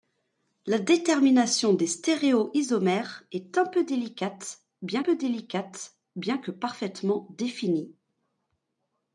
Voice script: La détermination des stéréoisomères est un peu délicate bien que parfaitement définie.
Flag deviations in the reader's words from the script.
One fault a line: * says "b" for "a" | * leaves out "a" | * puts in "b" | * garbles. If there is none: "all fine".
* puts in "peu délicate bien"